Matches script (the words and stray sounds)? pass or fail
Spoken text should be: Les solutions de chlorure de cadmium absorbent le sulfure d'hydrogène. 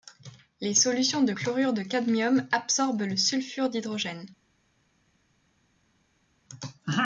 pass